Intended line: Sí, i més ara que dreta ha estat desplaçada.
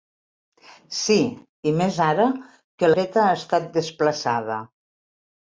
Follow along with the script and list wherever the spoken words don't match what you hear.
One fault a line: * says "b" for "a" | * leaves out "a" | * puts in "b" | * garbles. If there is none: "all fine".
all fine